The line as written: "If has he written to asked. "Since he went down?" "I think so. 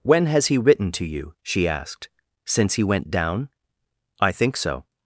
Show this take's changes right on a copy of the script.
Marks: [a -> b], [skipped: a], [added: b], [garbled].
["If -> When] has he written to [added: you she] asked. "Since he went down?" "I think so.